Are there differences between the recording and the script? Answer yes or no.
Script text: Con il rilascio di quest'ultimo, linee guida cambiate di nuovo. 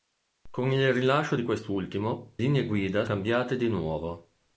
no